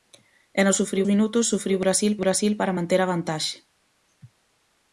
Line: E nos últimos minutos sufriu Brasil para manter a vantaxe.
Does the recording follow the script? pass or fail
fail